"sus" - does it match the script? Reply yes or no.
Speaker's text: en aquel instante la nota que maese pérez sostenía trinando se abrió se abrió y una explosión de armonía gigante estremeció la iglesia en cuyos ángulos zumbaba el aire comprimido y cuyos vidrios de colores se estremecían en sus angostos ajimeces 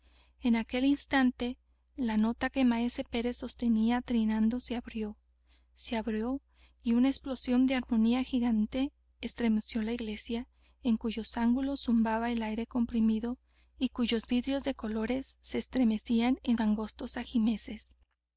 no